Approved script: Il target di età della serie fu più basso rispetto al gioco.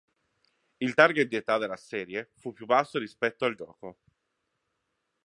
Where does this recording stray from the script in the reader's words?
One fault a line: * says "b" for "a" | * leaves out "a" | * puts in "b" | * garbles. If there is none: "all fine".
all fine